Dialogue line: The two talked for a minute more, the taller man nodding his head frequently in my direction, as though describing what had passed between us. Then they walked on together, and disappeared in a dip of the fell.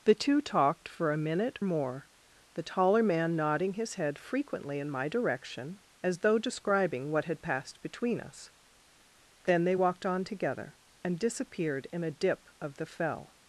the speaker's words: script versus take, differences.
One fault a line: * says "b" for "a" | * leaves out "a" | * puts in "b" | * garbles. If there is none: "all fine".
all fine